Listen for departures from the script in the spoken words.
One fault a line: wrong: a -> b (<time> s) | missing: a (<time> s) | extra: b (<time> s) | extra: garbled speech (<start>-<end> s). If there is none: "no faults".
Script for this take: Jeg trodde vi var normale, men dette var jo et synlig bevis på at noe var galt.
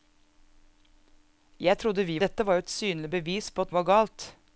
missing: var normale men (2.2 s)
missing: noe (3.8 s)